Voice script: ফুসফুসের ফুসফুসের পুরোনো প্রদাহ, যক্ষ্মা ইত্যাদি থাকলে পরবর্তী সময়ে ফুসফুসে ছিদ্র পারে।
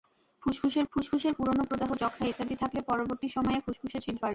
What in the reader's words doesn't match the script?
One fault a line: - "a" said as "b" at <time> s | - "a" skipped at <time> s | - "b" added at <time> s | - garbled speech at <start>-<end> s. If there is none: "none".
none